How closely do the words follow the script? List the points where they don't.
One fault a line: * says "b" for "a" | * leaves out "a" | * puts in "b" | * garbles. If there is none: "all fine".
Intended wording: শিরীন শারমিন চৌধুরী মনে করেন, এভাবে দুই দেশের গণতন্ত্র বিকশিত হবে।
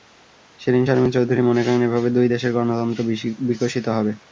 all fine